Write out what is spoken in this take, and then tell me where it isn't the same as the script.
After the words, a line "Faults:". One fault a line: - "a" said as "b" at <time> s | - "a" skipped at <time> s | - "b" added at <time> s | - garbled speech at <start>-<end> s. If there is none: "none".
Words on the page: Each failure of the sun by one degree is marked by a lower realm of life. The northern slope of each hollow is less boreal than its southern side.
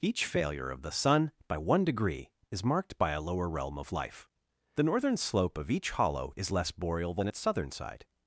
Each failure of the sun by one degree is marked by a lower realm of life. The northern slope of each hollow is less boreal than its southern side.
Faults:
none